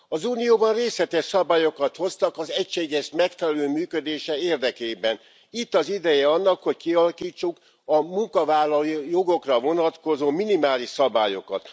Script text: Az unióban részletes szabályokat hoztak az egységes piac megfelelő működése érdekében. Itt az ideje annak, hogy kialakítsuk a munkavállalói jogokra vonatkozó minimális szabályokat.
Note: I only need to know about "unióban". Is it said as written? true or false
true